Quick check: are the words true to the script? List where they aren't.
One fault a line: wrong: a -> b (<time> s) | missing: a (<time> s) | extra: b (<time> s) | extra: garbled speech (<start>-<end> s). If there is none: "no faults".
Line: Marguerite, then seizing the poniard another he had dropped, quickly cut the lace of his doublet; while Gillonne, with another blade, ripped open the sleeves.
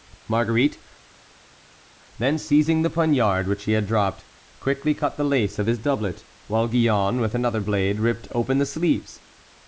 wrong: another -> which (3.5 s)